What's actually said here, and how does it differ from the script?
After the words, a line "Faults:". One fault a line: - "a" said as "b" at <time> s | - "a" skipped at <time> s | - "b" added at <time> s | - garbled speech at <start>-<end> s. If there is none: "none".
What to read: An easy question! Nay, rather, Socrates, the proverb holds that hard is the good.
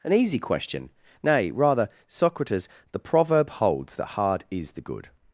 An easy question! Nay, rather, Socrates, the proverb holds that hard is the good.
Faults:
none